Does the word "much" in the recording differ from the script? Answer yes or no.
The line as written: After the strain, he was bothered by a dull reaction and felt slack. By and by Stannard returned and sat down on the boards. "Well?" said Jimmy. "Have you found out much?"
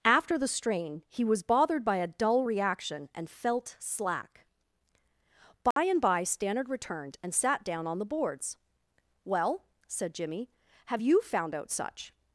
yes